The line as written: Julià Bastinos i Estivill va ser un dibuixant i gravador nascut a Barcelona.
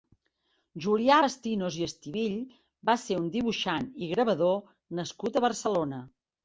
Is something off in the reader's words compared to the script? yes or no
no